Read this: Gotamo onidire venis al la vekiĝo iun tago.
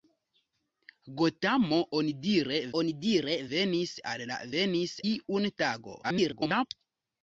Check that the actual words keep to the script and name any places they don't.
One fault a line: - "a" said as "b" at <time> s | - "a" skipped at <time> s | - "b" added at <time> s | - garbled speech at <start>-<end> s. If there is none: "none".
- "onidire" added at 2.8 s
- "vekiĝo" said as "venis" at 4.5 s
- garbled speech at 6.0-6.6 s